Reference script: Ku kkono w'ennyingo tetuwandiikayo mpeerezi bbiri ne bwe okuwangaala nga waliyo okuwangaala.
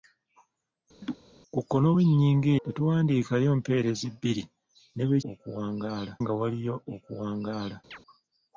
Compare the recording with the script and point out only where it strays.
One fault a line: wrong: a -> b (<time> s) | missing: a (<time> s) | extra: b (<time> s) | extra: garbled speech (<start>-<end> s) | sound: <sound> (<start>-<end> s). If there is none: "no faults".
sound: laugh (1.0-1.2 s)
sound: chirp (7.9-8.0 s)